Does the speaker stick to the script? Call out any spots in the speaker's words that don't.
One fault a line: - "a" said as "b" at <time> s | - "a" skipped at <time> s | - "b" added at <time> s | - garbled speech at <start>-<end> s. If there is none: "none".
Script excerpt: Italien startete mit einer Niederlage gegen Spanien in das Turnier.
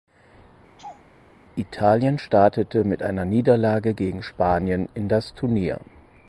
none